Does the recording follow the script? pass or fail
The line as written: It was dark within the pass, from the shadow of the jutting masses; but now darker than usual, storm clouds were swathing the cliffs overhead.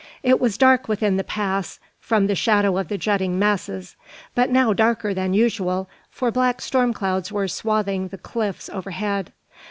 fail